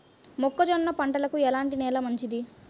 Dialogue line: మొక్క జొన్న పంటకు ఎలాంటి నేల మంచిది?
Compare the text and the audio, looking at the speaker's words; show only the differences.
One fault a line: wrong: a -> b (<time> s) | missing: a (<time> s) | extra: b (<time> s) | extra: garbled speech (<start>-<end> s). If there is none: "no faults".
no faults